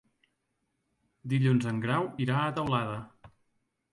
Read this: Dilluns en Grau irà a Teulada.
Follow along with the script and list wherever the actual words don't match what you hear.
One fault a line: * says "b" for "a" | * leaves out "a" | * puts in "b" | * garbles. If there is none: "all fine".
all fine